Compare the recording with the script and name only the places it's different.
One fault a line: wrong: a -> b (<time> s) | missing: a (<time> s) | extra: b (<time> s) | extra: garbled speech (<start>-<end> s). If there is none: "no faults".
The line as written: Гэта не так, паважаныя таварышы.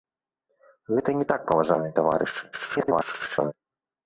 extra: garbled speech (2.5-3.5 s)